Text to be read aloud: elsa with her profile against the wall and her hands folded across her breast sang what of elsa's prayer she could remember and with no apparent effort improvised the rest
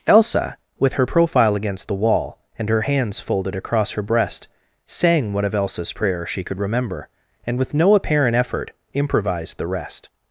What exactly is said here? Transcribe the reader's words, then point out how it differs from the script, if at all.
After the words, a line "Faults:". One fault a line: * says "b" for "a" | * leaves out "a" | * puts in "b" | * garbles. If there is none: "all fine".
elsa with her profile against the wall and her hands folded across her breast sang what of elsa's prayer she could remember and with no apparent effort improvised the rest
Faults:
all fine